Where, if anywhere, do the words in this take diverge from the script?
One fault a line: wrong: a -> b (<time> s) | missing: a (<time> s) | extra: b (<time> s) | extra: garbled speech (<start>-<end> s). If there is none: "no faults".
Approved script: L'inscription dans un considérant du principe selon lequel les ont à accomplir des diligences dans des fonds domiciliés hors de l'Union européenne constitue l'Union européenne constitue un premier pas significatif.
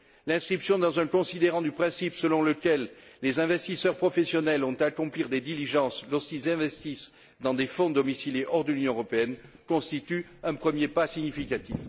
extra: investisseurs professionnels (3.4 s)
extra: lorsqu'ils investissent (6.1 s)
missing: l'Union européenne constitue (10.2 s)